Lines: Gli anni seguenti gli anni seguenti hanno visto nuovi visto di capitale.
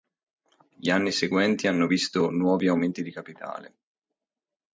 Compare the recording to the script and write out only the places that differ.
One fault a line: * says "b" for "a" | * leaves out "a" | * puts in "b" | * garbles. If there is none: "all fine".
* leaves out "gli anni seguenti"
* says "aumenti" for "visto"